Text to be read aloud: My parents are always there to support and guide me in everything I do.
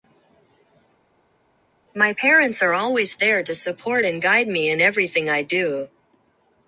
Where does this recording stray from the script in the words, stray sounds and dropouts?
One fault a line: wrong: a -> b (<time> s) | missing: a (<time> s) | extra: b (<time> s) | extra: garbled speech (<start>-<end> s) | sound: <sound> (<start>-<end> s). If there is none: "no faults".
no faults